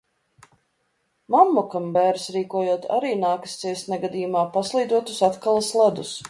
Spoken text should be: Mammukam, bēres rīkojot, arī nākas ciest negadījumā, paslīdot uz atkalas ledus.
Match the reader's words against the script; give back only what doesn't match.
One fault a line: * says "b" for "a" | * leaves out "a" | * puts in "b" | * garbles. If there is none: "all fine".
all fine